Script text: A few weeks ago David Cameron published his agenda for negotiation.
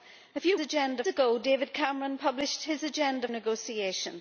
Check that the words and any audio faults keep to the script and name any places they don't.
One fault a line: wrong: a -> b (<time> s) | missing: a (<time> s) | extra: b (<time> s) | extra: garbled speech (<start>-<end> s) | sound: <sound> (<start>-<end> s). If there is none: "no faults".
wrong: weeks -> agenda (0.6 s)
missing: for (3.3 s)